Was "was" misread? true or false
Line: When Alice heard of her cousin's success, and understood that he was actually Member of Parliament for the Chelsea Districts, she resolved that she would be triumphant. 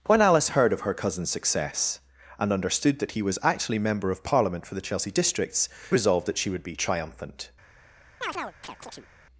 false